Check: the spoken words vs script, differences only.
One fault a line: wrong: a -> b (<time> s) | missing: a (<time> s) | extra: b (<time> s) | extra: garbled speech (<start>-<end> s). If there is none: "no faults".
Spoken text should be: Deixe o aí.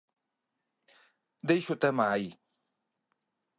extra: tema (1.8 s)